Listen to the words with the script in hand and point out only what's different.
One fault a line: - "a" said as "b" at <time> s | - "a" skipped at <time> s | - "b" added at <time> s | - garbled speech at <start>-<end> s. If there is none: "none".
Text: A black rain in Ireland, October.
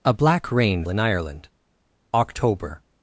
none